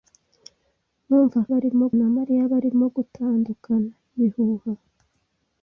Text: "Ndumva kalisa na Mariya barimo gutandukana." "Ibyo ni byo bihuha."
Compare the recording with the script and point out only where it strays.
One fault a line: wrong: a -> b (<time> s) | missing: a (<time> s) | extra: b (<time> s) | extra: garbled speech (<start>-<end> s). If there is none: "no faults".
wrong: kalisa -> barimo (1.5 s)
missing: Ibyo ni byo (3.9 s)